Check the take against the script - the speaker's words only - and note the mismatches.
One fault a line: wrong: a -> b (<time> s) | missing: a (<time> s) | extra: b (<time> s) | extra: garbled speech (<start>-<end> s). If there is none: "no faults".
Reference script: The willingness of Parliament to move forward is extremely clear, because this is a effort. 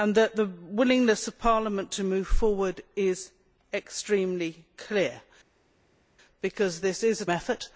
no faults